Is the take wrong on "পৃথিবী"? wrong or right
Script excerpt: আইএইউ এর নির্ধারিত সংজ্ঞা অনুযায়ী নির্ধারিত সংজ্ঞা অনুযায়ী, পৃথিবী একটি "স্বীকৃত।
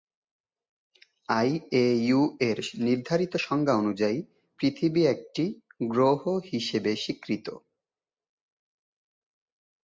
wrong